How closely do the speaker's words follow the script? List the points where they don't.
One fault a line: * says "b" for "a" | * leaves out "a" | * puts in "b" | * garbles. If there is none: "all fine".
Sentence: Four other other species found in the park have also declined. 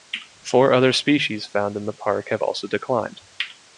* leaves out "other"